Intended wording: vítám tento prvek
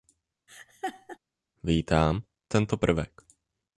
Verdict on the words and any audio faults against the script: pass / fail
fail